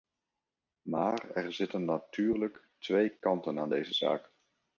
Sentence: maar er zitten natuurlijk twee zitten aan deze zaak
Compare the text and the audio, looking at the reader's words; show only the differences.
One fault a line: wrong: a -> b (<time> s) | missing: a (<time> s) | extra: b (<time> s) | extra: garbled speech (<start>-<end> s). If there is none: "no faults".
wrong: zitten -> kanten (3.1 s)